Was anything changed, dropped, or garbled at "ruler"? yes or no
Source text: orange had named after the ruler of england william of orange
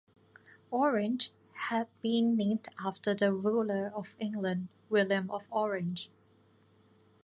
no